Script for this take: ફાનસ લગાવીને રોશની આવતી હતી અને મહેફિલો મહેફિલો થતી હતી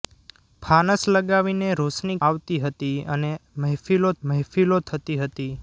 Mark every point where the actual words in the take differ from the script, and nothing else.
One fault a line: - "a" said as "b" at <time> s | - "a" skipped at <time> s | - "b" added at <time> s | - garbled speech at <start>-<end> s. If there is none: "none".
none